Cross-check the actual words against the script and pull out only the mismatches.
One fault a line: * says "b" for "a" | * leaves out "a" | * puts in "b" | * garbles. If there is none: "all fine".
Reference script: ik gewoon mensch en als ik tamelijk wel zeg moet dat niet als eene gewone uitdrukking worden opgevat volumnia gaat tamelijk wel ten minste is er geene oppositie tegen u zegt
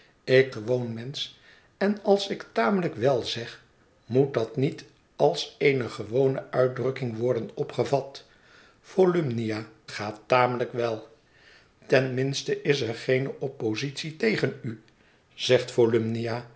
all fine